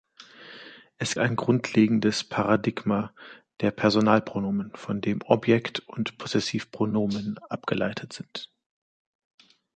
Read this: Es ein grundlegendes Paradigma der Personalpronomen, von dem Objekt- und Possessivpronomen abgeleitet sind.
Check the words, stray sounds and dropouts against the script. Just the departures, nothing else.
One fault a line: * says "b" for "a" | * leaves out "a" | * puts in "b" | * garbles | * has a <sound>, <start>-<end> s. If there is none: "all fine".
all fine